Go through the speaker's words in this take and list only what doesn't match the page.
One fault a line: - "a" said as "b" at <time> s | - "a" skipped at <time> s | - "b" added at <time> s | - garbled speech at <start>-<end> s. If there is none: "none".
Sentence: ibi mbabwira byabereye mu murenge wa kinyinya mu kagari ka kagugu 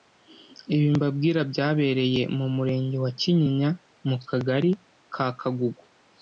none